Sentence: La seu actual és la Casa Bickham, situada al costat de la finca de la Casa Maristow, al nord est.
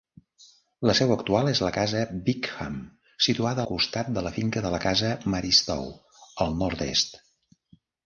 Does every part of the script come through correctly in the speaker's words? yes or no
no